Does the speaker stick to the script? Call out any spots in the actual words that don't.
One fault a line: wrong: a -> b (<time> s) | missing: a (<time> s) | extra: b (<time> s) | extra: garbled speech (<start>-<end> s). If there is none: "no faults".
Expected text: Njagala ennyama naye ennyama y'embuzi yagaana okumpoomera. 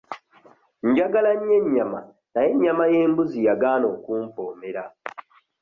extra: nnyo (1.4 s)